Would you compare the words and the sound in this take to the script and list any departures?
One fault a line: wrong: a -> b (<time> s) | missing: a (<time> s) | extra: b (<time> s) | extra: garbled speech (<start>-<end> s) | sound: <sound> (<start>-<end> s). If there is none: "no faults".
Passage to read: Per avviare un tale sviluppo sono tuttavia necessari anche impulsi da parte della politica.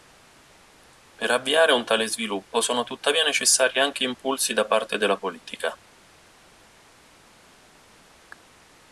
no faults